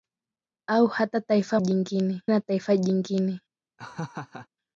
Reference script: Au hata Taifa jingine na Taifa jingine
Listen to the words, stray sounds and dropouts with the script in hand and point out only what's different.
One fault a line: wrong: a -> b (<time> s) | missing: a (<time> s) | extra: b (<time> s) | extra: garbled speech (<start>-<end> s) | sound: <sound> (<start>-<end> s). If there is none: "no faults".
sound: laugh (3.8-4.5 s)